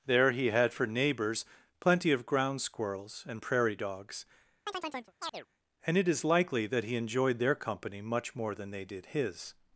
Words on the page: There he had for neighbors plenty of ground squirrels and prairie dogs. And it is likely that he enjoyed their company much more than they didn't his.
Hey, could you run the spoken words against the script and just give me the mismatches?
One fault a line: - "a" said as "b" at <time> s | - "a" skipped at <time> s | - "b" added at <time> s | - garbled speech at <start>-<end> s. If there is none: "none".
- "didn't" said as "did" at 8.9 s